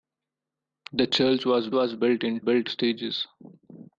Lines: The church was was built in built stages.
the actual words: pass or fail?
pass